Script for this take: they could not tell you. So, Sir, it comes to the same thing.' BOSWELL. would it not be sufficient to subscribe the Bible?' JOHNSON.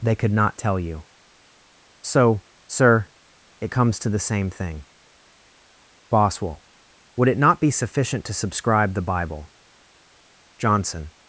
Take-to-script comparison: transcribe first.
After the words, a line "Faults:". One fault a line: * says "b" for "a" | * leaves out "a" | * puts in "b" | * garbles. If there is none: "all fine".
they could not tell you. So, Sir, it comes to the same thing.' BOSWELL. would it not be sufficient to subscribe the Bible?' JOHNSON.
Faults:
all fine